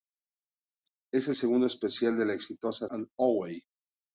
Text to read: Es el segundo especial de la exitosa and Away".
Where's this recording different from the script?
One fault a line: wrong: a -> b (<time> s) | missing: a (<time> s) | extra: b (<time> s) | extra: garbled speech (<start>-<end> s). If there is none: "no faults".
no faults